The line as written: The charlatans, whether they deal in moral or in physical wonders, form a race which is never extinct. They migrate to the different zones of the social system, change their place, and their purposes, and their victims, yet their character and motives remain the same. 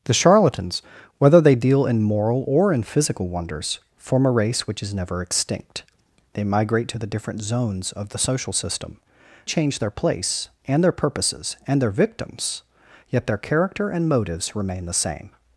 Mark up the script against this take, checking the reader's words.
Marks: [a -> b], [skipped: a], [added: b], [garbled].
The charlatans, whether they deal in moral or in physical wonders, form a race which is never extinct. They migrate to the different zones of the social system, change their place, and their purposes, and their victims, yet their character and motives remain the same.